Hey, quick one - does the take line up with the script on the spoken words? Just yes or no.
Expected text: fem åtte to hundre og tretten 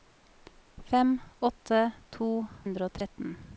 yes